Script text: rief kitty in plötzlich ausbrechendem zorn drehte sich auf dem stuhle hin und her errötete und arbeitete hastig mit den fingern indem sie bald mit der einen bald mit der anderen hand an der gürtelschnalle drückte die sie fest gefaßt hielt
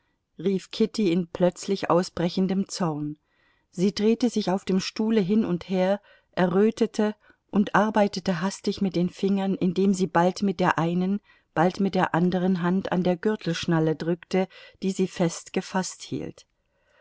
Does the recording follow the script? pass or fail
fail